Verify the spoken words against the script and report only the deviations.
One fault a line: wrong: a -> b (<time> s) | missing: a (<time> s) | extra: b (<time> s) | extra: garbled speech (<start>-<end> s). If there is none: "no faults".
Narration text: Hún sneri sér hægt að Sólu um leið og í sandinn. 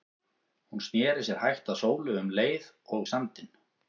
no faults